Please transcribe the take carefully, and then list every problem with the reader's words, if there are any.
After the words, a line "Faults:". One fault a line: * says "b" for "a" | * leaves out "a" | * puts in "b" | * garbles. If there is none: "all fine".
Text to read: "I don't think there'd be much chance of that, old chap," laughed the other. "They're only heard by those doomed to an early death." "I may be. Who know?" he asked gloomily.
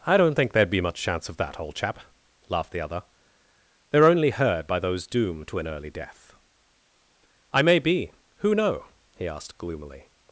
"I don't think there'd be much chance of that, old chap," laughed the other. "They're only heard by those doomed to an early death." "I may be. Who know?" he asked gloomily.
Faults:
all fine